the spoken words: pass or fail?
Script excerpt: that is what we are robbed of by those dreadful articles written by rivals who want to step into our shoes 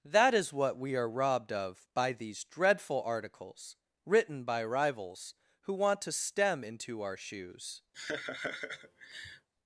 fail